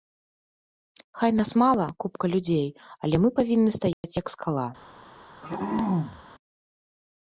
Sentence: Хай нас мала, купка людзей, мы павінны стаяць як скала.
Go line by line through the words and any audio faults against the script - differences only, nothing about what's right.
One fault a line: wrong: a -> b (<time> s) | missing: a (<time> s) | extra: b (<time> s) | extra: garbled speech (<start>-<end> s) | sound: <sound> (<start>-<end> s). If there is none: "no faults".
extra: але (3.0 s)
sound: dropout (3.9-4.0 s)
sound: throat clearing (5.4-6.2 s)